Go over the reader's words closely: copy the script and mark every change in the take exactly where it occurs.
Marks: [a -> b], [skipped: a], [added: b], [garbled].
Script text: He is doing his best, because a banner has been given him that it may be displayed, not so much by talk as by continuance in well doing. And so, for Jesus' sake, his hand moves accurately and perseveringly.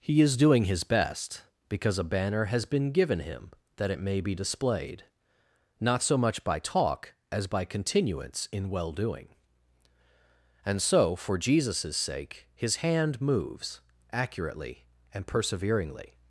He is doing his best, because a banner has been given him that it may be displayed, not so much by talk as by continuance in well doing. And so, for Jesus' sake, his hand moves accurately and perseveringly.